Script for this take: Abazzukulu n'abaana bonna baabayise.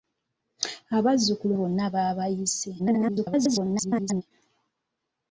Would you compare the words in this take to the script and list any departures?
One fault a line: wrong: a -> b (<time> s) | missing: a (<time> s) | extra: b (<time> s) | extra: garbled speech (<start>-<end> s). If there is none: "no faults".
missing: n'abaana (1.6 s)
extra: garbled speech (2.8-4.2 s)